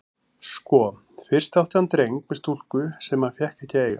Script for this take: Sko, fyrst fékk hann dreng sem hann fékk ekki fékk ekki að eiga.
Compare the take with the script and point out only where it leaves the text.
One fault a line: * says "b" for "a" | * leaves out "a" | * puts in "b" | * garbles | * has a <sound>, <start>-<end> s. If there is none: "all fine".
* says "átti" for "fékk"
* puts in "með stúlku"
* leaves out "fékk ekki"